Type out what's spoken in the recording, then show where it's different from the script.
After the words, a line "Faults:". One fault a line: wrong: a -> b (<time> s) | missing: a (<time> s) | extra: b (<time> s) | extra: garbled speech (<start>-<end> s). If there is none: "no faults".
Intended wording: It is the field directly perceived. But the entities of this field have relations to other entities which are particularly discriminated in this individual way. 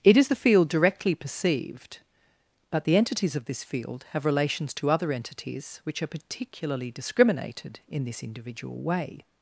It is the field directly perceived. But the entities of this field have relations to other entities which are particularly discriminated in this individual way.
Faults:
no faults